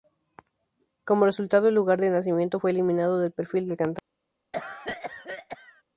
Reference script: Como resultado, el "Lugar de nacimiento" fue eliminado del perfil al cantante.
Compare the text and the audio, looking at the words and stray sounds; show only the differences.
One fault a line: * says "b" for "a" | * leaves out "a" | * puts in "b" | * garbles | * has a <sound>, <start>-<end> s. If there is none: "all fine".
* says "del" for "al"
* has a cough, 4.5-5.8 s